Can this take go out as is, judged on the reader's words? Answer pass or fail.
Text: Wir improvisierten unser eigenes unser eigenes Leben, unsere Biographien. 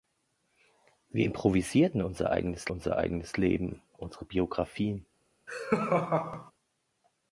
pass